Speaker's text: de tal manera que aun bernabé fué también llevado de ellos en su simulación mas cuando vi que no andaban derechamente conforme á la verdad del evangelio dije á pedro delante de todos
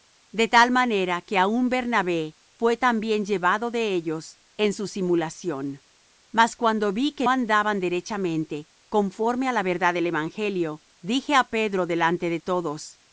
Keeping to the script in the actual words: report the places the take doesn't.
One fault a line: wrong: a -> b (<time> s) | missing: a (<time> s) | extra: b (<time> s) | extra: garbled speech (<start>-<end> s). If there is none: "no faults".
missing: no (7.3 s)